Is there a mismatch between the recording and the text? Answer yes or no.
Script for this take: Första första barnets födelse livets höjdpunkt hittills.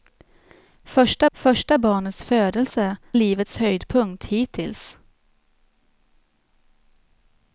no